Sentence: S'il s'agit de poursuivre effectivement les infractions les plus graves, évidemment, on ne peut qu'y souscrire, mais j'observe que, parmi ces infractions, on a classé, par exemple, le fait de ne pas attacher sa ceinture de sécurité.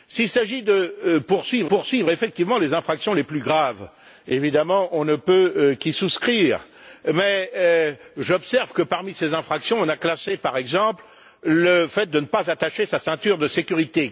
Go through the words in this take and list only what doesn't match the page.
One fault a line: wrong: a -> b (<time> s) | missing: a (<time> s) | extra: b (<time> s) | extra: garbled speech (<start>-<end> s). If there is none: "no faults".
extra: poursuivre (1.7 s)